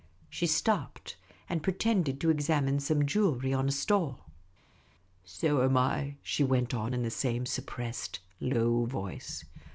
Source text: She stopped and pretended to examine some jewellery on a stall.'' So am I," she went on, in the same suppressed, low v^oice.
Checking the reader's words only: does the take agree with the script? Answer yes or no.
yes